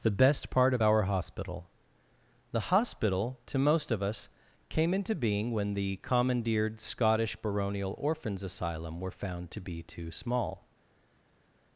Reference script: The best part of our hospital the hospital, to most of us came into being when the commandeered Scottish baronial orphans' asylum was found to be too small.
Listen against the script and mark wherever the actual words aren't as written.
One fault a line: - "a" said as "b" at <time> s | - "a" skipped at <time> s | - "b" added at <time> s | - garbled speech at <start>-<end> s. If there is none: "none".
- "was" said as "were" at 9.0 s